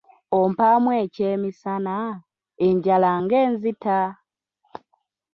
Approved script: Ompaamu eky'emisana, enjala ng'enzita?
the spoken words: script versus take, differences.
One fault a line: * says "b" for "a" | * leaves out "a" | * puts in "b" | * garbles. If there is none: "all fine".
all fine